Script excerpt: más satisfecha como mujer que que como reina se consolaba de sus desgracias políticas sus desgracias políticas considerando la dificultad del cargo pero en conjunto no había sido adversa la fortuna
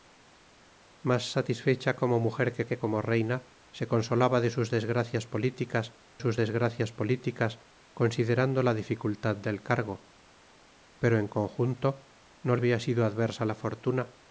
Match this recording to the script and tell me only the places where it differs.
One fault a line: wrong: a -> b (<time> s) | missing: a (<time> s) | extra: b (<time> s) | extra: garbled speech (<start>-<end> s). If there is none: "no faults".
no faults